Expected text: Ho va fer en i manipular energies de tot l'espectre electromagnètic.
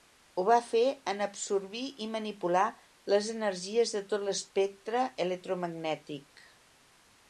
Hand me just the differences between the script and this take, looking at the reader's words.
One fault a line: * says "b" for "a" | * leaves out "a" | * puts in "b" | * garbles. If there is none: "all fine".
* puts in "absorbir"
* puts in "les"